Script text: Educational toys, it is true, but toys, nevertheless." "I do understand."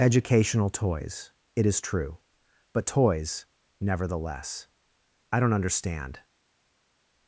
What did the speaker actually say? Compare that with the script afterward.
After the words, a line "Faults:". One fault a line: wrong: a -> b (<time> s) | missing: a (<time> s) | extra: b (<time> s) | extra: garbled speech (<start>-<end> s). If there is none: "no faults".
Educational toys, it is true, but toys, nevertheless." "I don't understand."
Faults:
wrong: do -> don't (5.4 s)